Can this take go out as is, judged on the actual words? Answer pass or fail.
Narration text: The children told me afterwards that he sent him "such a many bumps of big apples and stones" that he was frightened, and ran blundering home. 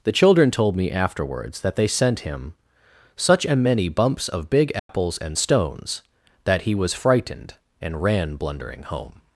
fail